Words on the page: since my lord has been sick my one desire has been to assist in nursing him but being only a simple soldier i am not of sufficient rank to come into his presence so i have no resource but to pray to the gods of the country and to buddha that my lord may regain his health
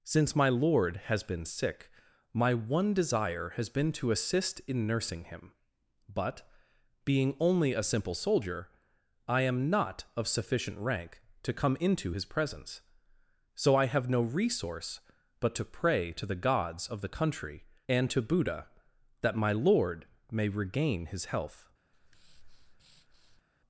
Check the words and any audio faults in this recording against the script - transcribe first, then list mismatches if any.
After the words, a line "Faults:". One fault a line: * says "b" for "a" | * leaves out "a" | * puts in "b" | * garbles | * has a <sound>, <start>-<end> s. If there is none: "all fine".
since my lord has been sick my one desire has been to assist in nursing him but being only a simple soldier i am not of sufficient rank to come into his presence so i have no resource but to pray to the gods of the country and to buddha that my lord may regain his health
Faults:
* has a breath, 21.9-23.4 s